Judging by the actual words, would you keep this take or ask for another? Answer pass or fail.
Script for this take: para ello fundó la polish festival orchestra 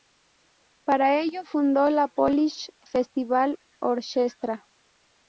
pass